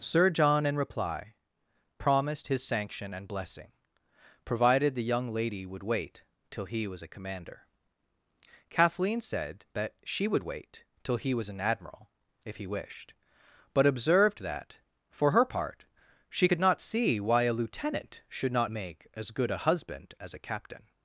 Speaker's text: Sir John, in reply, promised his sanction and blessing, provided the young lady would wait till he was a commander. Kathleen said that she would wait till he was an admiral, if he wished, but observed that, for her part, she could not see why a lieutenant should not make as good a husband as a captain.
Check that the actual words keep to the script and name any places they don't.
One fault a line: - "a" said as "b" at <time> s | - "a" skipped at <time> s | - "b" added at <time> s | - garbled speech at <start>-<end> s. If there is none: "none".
none